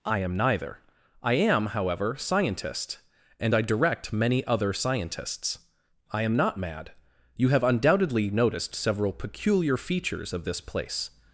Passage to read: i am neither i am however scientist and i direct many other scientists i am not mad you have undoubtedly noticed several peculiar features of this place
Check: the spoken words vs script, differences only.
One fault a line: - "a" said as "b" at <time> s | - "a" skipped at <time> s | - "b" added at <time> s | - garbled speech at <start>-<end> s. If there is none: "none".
none